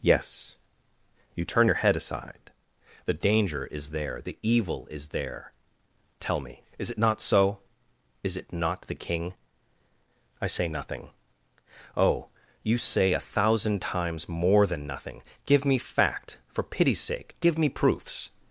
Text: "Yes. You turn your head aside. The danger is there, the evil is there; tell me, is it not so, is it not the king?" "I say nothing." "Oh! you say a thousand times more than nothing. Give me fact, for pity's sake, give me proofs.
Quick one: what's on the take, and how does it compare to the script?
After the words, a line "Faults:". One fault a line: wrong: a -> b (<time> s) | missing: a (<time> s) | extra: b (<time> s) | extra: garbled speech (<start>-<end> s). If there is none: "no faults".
"Yes. You turn your head aside. The danger is there, the evil is there; tell me, is it not so, is it not the king?" "I say nothing." "Oh! you say a thousand times more than nothing. Give me fact, for pity's sake, give me proofs.
Faults:
no faults